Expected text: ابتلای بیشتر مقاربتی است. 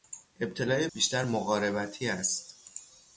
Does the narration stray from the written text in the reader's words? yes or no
no